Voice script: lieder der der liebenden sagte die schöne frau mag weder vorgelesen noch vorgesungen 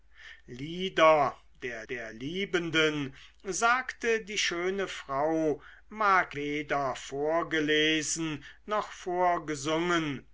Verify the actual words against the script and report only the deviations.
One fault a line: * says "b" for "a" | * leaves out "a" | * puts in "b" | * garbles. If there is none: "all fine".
all fine